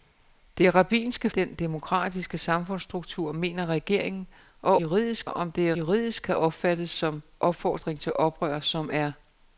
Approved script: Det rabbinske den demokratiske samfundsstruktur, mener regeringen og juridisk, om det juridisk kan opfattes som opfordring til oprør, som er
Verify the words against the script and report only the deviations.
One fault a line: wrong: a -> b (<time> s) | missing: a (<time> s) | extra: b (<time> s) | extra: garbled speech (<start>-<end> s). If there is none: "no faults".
no faults